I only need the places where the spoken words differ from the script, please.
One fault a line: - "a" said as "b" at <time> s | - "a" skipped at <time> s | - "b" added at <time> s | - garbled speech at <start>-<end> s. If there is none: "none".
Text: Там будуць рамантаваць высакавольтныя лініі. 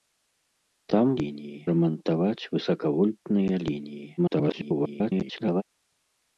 - "будуць" said as "лініі" at 1.2 s
- garbled speech at 4.2-5.6 s